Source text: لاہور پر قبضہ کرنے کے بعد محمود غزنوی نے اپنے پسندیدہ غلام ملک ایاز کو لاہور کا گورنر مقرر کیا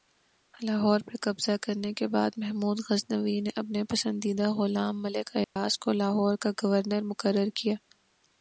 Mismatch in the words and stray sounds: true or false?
true